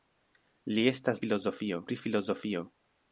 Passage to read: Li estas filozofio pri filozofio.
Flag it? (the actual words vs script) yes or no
no